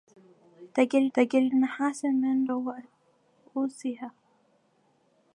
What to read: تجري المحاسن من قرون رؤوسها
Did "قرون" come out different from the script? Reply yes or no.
yes